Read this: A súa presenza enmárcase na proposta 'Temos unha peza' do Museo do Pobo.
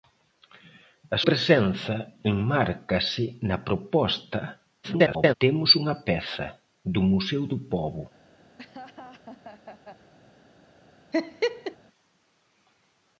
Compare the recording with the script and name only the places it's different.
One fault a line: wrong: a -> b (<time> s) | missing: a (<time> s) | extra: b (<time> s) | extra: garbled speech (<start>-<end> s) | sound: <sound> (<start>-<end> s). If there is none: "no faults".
missing: súa (1.2 s)
extra: garbled speech (4.8-5.3 s)
sound: laugh (8.6-10.1 s)
sound: laugh (11.1-11.8 s)